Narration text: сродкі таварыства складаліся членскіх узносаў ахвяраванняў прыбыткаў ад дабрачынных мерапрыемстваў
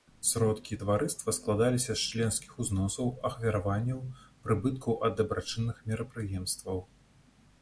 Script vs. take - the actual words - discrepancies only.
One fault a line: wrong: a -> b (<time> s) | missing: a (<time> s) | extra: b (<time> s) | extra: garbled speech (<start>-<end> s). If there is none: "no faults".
extra: з (2.0 s)